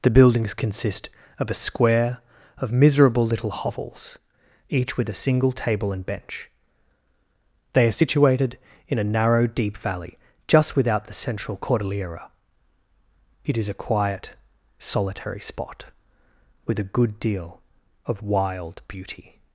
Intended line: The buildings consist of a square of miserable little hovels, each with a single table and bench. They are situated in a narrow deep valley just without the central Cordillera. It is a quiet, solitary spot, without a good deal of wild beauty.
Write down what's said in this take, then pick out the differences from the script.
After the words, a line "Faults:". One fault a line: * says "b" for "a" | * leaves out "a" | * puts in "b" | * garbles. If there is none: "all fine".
The buildings consist of a square of miserable little hovels, each with a single table and bench. They are situated in a narrow deep valley just without the central Cordillera. It is a quiet, solitary spot, with a good deal of wild beauty.
Faults:
* says "with" for "without"